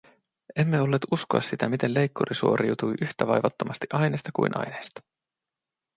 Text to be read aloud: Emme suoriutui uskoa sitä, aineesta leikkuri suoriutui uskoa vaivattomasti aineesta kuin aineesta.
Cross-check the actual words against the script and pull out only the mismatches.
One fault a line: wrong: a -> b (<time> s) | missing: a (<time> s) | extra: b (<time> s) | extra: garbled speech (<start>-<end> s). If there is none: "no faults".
wrong: suoriutui -> olleet (0.8 s)
wrong: aineesta -> miten (1.7 s)
wrong: uskoa -> yhtä (3.0 s)